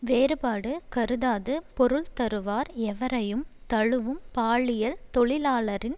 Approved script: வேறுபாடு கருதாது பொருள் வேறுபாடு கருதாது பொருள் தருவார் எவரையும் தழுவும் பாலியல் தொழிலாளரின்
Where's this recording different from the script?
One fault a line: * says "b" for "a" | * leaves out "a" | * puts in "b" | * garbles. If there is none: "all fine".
* leaves out "வேறுபாடு கருதாது பொருள்"